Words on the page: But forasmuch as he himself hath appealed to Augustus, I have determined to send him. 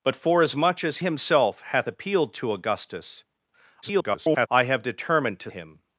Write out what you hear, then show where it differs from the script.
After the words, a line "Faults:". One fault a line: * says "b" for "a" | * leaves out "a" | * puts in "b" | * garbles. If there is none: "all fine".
But forasmuch as himself hath appealed to Augustus, [garbled] I have determined to him.
Faults:
* leaves out "he"
* garbles
* leaves out "send"